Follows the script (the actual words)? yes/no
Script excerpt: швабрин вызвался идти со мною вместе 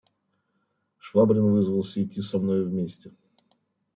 yes